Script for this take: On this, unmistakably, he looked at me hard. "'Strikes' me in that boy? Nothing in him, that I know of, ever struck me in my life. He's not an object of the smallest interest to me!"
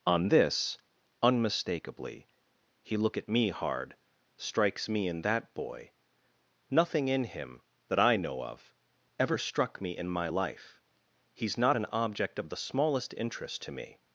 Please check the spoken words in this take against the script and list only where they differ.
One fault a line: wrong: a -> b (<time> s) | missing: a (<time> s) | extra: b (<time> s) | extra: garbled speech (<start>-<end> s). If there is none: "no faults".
wrong: looked -> look (3.0 s)